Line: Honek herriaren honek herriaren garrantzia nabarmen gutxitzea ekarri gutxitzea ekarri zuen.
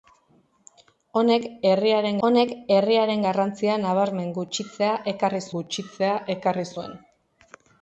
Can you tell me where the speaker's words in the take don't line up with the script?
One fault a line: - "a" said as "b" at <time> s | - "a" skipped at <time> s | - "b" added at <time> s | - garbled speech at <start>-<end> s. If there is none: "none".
none